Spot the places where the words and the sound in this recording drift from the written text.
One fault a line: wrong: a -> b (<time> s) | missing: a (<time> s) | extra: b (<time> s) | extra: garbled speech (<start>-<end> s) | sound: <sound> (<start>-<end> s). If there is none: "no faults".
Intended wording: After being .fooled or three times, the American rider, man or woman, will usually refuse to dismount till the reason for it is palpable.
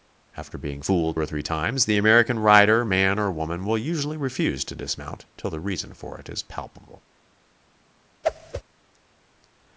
sound: whoosh (8.2-8.6 s)